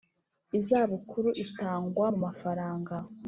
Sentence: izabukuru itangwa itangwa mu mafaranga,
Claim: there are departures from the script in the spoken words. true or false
true